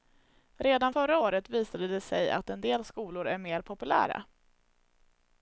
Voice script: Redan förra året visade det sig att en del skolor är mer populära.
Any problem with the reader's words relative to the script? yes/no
no